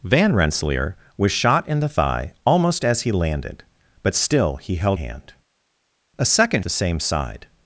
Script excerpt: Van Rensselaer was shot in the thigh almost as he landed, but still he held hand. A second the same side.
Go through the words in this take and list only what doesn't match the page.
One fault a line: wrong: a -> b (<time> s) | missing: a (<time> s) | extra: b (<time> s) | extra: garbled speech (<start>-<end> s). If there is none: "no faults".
no faults